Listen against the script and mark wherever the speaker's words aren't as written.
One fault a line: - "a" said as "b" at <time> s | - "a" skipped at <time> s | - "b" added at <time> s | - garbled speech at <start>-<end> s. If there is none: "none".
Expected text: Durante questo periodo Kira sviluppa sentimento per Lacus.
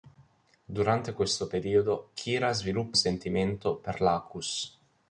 none